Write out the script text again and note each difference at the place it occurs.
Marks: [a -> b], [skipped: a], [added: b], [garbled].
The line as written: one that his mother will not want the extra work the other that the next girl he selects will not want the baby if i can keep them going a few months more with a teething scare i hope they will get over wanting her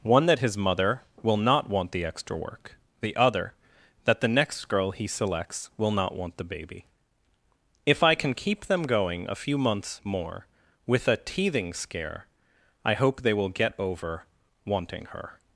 one that his mother will not want the extra work the other that the next girl he selects will not want the baby if i can keep them going a few months more with a teething scare i hope they will get over wanting her